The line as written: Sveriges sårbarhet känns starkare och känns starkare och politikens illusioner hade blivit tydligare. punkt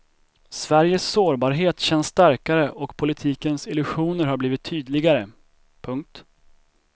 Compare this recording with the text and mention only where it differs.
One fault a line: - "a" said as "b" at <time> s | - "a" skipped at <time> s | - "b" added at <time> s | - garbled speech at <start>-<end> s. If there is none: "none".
- "känns starkare och" skipped at 3.0 s
- "hade" said as "har" at 4.2 s